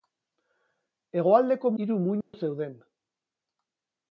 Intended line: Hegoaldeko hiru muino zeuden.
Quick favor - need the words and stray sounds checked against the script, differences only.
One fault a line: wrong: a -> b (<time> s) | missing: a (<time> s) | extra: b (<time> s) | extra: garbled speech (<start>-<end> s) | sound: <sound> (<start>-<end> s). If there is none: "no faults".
sound: dropout (2.2-2.3 s)